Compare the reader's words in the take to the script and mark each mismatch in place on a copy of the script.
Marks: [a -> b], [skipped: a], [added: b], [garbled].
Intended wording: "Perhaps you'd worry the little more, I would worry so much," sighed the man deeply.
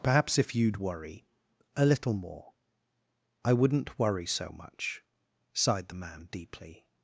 "Perhaps [added: if] you'd worry [the -> a] little more, I [would -> wouldn't] worry so much," sighed the man deeply.